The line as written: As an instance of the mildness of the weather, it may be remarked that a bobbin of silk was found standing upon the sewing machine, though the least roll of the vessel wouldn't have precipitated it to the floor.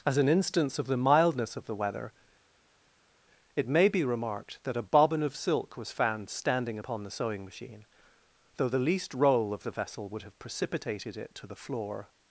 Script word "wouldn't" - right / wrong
wrong